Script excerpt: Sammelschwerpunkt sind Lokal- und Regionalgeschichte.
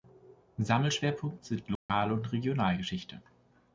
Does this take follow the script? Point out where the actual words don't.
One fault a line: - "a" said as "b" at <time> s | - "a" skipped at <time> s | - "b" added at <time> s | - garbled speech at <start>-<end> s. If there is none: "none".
none